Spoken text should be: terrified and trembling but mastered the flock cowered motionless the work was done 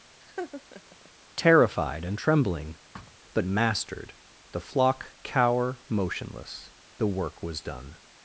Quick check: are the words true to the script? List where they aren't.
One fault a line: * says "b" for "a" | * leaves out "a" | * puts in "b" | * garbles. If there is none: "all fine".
* says "cower" for "cowered"